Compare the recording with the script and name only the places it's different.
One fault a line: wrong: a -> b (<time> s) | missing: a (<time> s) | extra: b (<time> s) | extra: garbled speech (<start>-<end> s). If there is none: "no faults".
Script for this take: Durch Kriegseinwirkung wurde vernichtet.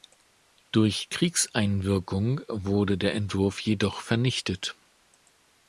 extra: der Entwurf jedoch (3.0 s)